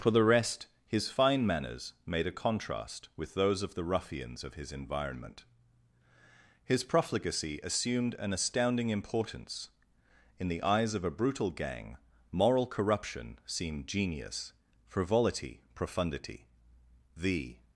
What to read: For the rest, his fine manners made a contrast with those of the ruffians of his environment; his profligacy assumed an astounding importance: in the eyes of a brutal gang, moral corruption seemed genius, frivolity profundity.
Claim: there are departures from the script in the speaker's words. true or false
true